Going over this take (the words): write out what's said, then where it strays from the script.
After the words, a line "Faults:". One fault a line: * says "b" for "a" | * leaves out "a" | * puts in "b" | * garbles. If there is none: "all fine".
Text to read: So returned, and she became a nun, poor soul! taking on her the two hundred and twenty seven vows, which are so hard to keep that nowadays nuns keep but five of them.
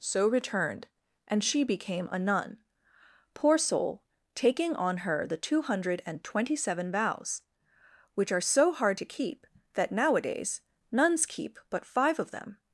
So returned, and she became a nun, poor soul! taking on her the two hundred and twenty seven vows, which are so hard to keep that nowadays nuns keep but five of them.
Faults:
all fine